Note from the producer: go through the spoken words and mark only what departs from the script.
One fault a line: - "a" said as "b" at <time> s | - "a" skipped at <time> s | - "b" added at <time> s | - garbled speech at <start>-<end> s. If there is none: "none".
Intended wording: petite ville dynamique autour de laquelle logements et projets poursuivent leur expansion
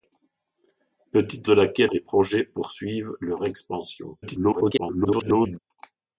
- "ville dynamique autour" skipped at 1.5 s
- "logements" skipped at 1.9 s
- garbled speech at 4.2-5.6 s